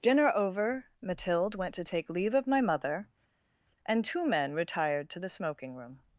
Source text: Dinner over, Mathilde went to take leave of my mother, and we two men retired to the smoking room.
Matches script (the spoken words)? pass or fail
fail